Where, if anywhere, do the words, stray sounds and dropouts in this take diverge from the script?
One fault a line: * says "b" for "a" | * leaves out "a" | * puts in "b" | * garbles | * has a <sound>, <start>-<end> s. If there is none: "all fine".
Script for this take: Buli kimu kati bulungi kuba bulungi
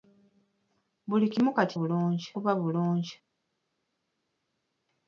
all fine